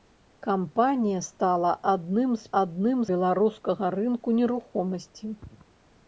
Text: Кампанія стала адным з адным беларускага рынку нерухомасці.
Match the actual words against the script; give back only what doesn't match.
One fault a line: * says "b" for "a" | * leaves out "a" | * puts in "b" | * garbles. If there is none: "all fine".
all fine